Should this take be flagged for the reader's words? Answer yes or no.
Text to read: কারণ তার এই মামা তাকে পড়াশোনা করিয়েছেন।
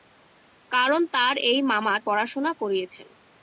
yes